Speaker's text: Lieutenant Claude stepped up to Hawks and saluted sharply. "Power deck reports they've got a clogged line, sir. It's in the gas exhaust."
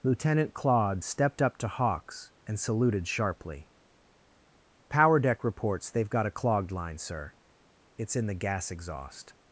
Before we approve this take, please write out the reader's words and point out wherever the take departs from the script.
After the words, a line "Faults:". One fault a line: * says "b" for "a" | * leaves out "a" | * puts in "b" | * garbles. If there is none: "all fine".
Lieutenant Claude stepped up to Hawks and saluted sharply. "Power deck reports they've got a clogged line, sir. It's in the gas exhaust."
Faults:
all fine